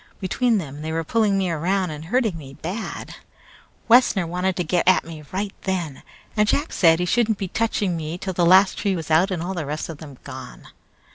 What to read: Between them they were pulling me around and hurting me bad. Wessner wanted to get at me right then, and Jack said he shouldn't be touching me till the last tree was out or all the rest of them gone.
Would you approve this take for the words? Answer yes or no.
no